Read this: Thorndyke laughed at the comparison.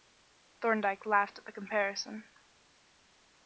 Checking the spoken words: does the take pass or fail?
pass